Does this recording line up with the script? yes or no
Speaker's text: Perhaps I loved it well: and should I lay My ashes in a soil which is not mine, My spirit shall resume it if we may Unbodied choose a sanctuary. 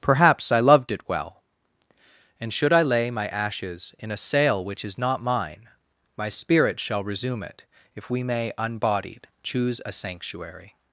no